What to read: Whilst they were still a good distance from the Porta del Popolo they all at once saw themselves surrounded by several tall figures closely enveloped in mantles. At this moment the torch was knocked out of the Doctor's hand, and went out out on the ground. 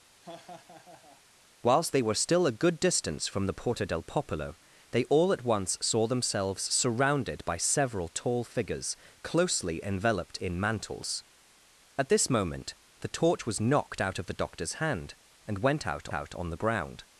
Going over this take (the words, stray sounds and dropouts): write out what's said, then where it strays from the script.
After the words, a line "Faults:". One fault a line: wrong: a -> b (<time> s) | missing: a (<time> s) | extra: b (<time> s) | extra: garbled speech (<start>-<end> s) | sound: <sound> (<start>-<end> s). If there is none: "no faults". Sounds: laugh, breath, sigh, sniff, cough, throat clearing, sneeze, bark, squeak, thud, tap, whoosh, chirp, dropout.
Whilst they were still a good distance from the Porta del Popolo they all at once saw themselves surrounded by several tall figures closely enveloped in mantles. At this moment the torch was knocked out of the Doctor's hand, and went out out on the ground.
Faults:
sound: laugh (0.2-1.2 s)